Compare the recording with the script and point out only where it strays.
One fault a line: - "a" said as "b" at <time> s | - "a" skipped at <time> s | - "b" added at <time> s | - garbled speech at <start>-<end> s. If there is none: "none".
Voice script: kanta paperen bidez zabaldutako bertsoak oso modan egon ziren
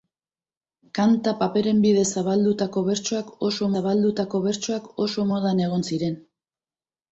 - "zabaldutako bertsoak oso" added at 3.8 s